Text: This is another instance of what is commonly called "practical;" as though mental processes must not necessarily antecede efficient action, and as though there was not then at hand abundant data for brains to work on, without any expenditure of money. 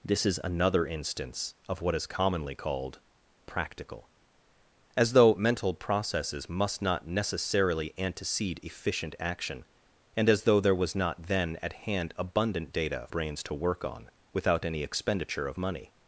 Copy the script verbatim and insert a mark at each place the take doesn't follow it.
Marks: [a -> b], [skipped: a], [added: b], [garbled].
This is another instance of what is commonly called "practical;" as though mental processes must not necessarily antecede efficient action, and as though there was not then at hand abundant data [skipped: for] brains to work on, without any expenditure of money.